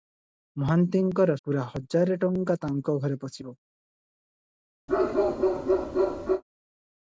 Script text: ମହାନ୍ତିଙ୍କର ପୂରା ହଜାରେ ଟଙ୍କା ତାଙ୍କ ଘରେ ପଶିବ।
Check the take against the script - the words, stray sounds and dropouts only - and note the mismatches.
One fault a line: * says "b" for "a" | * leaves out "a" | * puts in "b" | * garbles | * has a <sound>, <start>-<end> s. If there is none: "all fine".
* has a bark, 4.9-6.4 s